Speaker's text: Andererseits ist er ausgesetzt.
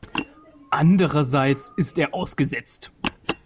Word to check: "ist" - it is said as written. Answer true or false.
true